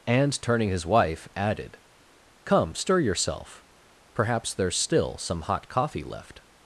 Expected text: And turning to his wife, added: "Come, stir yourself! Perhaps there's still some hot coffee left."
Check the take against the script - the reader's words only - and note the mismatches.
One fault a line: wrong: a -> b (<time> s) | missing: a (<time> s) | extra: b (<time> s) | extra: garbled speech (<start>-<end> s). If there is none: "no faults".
missing: to (0.7 s)